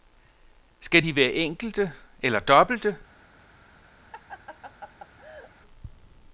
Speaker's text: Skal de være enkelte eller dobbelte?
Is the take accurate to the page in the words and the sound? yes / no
no